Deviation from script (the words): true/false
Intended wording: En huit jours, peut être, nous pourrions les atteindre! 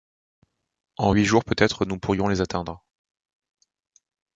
false